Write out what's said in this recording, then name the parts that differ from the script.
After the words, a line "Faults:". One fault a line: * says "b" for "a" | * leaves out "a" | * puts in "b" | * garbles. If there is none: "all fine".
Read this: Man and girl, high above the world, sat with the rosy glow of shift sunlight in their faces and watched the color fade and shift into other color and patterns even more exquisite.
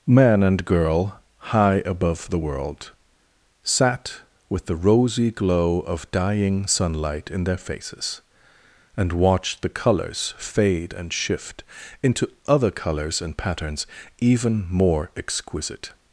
Man and girl, high above the world, sat with the rosy glow of dying sunlight in their faces and watched the colors fade and shift into other colors and patterns even more exquisite.
Faults:
* says "dying" for "shift"
* says "colors" for "color"
* says "colors" for "color"